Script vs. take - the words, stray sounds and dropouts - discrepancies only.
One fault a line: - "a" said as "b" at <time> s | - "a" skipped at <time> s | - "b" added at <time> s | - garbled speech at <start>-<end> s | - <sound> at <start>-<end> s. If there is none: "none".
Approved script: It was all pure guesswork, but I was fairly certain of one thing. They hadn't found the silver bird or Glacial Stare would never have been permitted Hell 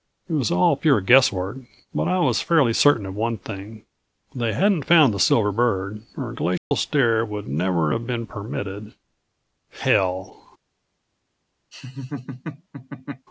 - dropout at 6.6-6.7 s
- laugh at 11.7-13.3 s